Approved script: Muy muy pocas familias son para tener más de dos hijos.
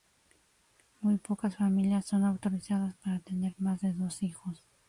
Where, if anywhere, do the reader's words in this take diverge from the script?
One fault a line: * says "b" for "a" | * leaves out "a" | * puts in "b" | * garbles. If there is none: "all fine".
* leaves out "muy"
* puts in "autorizadas"